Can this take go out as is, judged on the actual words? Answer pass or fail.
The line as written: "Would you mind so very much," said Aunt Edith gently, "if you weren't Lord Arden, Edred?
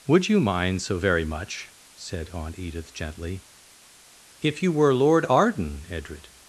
fail